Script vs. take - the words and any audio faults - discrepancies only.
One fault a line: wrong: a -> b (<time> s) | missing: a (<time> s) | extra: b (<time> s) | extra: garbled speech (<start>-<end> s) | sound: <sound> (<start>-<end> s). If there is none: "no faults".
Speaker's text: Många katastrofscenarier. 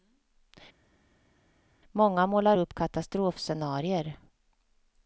extra: målar upp (2.3 s)